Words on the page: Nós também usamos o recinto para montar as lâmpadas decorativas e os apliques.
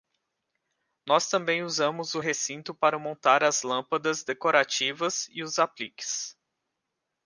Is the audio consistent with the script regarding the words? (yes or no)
yes